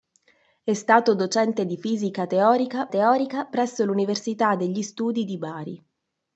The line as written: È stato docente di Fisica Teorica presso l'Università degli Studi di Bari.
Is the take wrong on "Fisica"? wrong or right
right